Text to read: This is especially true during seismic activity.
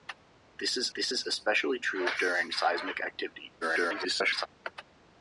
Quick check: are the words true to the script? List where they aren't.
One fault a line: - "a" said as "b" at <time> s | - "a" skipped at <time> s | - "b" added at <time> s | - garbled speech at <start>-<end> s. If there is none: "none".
- "this is" added at 0.9 s
- garbled speech at 3.6-4.5 s